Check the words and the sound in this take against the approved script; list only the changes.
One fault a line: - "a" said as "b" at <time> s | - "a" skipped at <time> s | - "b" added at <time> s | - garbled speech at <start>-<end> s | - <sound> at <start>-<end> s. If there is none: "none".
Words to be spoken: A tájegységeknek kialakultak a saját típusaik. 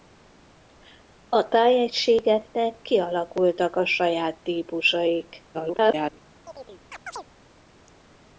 - garbled speech at 5.5-6.2 s
- chirp at 6.5-7.3 s